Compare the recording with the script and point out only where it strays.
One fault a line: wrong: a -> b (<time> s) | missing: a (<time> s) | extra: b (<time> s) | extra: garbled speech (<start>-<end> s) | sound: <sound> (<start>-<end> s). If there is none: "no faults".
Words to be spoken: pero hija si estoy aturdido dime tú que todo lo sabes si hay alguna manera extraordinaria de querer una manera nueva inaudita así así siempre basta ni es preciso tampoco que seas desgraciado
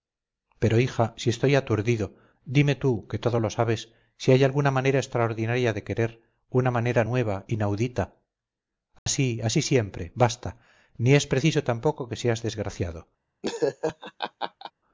sound: dropout (9.0-9.1 s)
sound: laugh (13.4-14.7 s)